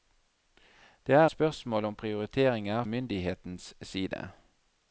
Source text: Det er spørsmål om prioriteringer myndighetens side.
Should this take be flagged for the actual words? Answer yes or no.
no